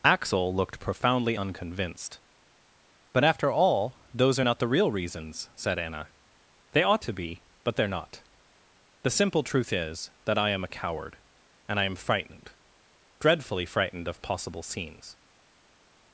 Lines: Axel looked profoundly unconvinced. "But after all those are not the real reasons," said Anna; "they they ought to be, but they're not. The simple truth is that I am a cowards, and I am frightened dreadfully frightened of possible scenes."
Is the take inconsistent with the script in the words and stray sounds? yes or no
yes